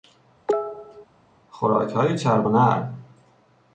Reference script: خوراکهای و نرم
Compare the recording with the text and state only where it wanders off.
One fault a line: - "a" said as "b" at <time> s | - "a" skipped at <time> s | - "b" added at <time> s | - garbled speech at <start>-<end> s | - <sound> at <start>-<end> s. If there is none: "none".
- cough at 0.5-1.1 s
- "چرب" added at 2.2 s